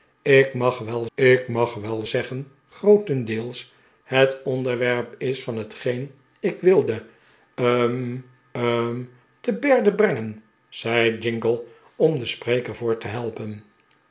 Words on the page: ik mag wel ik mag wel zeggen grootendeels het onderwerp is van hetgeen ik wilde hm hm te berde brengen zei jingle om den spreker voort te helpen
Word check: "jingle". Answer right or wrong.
right